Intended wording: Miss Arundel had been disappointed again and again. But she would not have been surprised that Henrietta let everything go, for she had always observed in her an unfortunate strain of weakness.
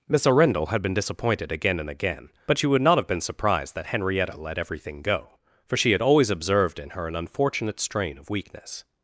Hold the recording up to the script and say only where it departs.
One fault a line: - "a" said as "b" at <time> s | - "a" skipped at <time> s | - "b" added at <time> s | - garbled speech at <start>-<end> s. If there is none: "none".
none